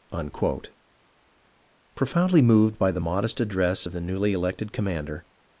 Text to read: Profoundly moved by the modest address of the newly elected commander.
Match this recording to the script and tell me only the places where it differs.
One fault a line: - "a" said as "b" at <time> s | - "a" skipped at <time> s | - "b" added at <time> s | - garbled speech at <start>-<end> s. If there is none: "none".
none